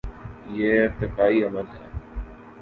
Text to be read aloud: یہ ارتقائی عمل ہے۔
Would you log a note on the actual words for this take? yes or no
no